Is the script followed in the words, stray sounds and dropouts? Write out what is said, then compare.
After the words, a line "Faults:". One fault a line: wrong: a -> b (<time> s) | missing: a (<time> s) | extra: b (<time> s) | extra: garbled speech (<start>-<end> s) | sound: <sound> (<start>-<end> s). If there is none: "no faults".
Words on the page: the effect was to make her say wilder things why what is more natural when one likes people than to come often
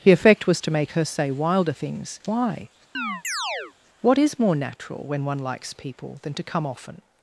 the effect was to make her say wilder things why what is more natural when one likes people than to come often
Faults:
sound: chirp (2.9-3.7 s)